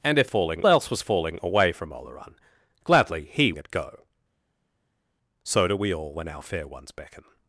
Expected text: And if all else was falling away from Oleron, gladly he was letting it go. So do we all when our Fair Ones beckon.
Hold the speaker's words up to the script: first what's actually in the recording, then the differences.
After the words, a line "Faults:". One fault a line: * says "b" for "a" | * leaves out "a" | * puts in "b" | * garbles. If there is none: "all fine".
And if falling else was falling away from Oleron, gladly he it go. So do we all when our Fair Ones beckon.
Faults:
* says "falling" for "all"
* leaves out "was letting"